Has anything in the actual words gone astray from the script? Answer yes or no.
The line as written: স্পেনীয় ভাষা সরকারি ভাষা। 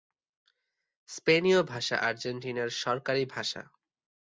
yes